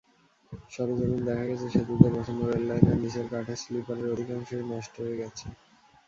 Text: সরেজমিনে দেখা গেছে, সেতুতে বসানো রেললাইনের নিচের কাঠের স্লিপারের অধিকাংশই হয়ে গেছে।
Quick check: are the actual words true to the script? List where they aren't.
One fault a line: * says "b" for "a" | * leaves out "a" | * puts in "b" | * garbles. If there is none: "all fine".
* puts in "নষ্ট"